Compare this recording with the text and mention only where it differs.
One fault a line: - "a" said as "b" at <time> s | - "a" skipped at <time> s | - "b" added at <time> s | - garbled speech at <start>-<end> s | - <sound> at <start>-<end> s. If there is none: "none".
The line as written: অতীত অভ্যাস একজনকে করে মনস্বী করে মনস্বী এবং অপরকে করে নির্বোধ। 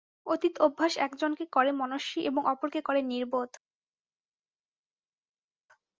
- "করে মনস্বী" skipped at 2.2 s